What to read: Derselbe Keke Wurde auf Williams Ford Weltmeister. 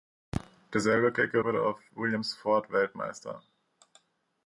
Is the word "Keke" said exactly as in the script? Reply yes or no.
yes